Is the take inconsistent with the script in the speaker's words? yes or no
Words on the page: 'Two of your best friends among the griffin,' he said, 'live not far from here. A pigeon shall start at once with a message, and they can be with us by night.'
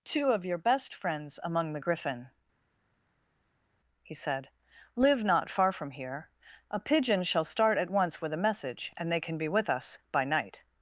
no